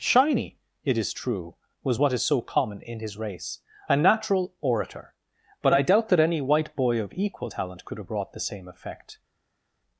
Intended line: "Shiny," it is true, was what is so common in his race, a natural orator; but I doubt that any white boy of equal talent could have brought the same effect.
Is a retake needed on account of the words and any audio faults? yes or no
no